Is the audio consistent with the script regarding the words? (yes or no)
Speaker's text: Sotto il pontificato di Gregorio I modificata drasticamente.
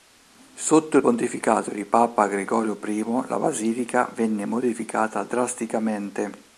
no